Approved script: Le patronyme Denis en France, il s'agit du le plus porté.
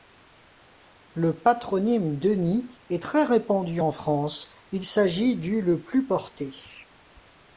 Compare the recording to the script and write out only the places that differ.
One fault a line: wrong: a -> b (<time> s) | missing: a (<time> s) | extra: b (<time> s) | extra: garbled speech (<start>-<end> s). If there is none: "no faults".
extra: est très répandu (2.9 s)